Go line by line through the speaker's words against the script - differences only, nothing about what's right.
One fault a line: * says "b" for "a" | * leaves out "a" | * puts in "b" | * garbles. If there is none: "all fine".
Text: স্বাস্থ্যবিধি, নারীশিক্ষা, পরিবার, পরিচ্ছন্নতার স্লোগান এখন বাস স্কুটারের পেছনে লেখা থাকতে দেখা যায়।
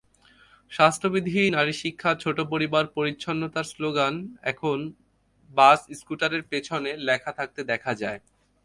* puts in "ছোট"